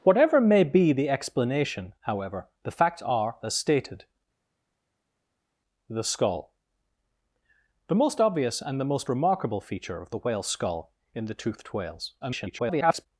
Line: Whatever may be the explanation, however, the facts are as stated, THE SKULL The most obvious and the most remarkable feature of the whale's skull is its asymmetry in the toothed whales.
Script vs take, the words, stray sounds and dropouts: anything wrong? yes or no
yes